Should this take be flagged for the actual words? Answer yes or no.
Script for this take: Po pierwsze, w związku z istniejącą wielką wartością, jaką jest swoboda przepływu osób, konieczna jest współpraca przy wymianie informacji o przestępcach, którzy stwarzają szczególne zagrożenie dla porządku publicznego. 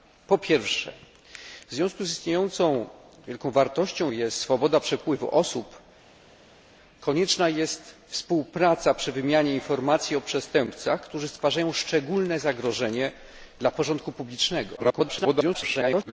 yes